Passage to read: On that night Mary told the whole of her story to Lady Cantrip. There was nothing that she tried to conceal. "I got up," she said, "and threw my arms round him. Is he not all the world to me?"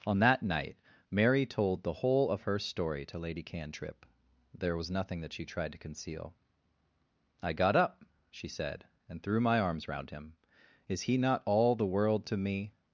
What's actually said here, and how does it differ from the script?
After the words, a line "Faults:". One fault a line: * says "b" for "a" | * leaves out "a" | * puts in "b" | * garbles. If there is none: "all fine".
On that night Mary told the whole of her story to Lady Cantrip. There was nothing that she tried to conceal. "I got up," she said, "and threw my arms round him. Is he not all the world to me?"
Faults:
all fine